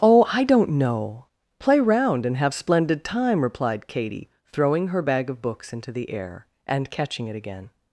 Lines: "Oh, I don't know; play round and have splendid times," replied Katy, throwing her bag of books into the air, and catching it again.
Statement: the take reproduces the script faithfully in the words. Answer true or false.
false